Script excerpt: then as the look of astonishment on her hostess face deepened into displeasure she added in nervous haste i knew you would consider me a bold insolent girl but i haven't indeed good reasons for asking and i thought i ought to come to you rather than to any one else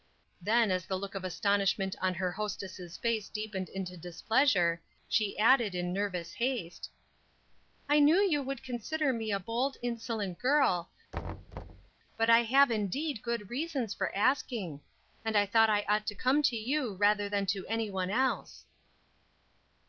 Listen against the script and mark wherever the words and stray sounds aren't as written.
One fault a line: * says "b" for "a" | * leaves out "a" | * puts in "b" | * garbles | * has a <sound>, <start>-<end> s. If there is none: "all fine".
* has a thud, 11.1-11.9 s
* says "have" for "haven't"